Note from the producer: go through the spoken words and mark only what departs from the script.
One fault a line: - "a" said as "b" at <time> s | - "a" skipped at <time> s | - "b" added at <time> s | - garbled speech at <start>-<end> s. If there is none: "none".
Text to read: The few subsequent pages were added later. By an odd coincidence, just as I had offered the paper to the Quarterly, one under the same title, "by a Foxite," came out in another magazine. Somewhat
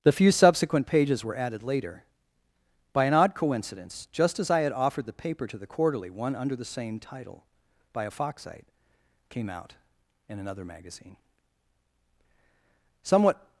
none